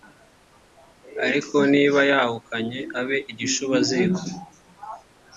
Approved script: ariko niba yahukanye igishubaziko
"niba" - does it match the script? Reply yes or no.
yes